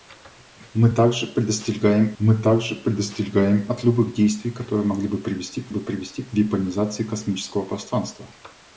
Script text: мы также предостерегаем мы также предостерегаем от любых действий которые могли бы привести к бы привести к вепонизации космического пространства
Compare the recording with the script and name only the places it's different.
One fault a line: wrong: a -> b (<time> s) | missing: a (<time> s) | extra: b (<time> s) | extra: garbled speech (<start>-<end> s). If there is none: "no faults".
no faults